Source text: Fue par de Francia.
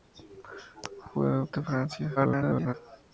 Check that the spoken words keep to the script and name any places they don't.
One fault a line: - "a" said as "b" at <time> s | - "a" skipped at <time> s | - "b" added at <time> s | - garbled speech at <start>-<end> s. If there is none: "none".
- "par" skipped at 1.4 s
- garbled speech at 2.2-2.7 s